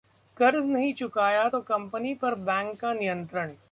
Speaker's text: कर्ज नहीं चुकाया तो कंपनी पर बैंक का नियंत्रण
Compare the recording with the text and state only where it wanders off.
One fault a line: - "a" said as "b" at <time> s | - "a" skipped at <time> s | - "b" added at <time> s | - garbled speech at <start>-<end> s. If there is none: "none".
none